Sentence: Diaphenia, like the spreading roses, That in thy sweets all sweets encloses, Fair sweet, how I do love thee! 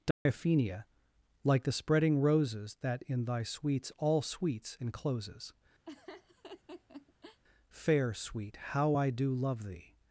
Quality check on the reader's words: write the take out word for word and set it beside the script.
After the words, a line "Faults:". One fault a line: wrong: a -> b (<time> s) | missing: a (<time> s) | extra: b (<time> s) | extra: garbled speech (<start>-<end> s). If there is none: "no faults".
Diaphenia, like the spreading roses, That in thy sweets all sweets encloses, Fair sweet, how I do love thee!
Faults:
no faults